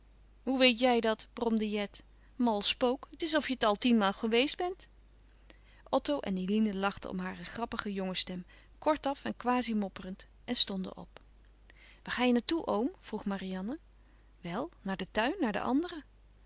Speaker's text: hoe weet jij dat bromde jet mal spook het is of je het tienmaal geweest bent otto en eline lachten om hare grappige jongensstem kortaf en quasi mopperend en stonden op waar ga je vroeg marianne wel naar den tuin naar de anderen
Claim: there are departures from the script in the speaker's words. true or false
true